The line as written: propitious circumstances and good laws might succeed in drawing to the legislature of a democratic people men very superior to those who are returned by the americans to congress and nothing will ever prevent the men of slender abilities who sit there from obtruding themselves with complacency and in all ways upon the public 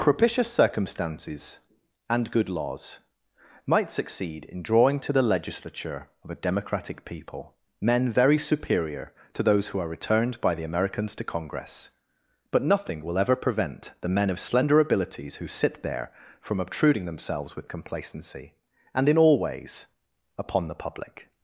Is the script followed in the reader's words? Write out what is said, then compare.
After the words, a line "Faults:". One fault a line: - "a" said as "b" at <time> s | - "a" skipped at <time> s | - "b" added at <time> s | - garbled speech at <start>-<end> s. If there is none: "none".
propitious circumstances and good laws might succeed in drawing to the legislature of a democratic people men very superior to those who are returned by the americans to congress but nothing will ever prevent the men of slender abilities who sit there from obtruding themselves with complacency and in all ways upon the public
Faults:
- "and" said as "but" at 12.5 s